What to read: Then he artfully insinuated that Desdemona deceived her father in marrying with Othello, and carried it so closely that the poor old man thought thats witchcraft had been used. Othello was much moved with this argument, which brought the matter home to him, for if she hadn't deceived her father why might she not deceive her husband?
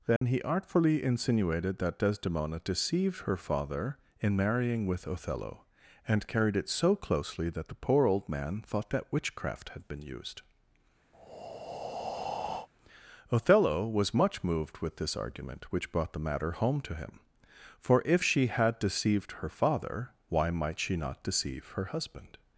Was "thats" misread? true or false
true